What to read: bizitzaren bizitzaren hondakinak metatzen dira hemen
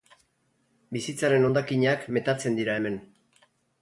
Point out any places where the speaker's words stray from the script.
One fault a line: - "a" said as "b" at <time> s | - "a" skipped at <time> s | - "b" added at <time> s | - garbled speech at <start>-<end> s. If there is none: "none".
- "bizitzaren" skipped at 1.4 s